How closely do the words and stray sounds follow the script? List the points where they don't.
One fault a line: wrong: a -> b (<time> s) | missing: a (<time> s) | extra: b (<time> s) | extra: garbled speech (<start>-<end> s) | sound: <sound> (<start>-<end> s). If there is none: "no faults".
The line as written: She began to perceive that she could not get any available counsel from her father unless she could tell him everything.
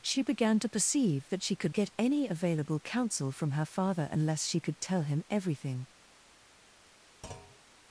missing: not (1.7 s)
sound: thud (7.2-7.6 s)